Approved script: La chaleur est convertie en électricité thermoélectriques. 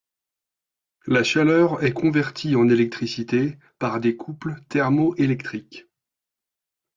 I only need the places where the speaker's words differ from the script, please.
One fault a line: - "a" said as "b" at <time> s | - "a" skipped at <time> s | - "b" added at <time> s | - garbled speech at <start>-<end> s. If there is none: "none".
- "par des couples" added at 3.8 s